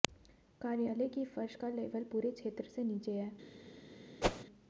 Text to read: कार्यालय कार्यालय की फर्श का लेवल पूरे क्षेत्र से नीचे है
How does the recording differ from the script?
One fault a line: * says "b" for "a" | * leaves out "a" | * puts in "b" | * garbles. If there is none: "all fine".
* leaves out "कार्यालय"